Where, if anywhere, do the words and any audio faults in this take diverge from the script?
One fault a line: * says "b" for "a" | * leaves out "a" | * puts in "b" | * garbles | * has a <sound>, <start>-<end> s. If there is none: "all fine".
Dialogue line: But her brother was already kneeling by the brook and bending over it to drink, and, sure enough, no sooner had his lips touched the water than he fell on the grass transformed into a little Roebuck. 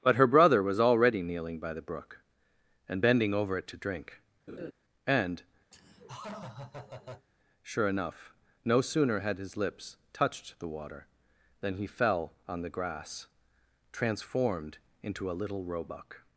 * has a laugh, 4.5-4.7 s
* has a laugh, 5.7-7.3 s